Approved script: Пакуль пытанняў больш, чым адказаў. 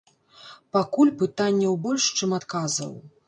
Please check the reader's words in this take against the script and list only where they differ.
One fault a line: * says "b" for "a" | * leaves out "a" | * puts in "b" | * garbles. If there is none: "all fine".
all fine